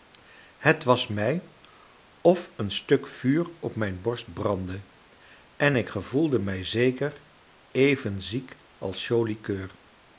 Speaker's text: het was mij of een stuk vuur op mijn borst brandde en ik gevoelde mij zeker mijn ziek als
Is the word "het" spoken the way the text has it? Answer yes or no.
yes